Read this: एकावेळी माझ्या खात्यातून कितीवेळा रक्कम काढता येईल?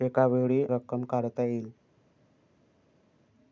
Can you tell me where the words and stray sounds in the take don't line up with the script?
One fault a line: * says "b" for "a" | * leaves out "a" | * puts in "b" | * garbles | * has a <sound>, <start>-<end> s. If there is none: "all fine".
* leaves out "माझ्या खात्यातून कितीवेळा"